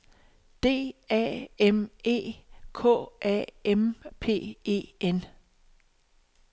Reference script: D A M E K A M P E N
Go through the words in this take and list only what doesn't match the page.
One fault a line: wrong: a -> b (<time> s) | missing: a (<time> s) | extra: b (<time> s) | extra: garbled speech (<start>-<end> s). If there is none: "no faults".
no faults